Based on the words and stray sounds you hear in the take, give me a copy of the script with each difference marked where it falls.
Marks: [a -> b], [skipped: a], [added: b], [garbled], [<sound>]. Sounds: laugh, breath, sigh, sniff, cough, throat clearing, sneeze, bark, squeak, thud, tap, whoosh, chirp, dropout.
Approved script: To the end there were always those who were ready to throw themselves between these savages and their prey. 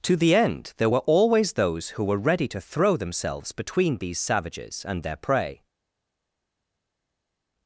To the end there were always those who were ready to throw themselves between these savages and their prey.